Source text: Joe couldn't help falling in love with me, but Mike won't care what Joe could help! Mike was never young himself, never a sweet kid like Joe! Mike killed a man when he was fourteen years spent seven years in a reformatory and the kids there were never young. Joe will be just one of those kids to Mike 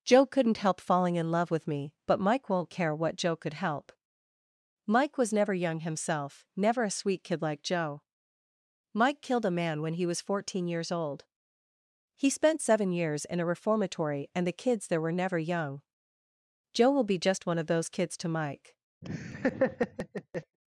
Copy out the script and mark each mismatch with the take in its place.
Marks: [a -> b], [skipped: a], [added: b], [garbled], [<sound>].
Joe couldn't help falling in love with me, but Mike won't care what Joe could help! Mike was never young himself, never a sweet kid like Joe! Mike killed a man when he was fourteen years [added: old He] spent seven years in a reformatory and the kids there were never young. Joe will be just one of those kids to Mike [laugh]